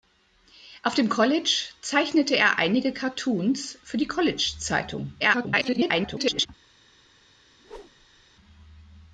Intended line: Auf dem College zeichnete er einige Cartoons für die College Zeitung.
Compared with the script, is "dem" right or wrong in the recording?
right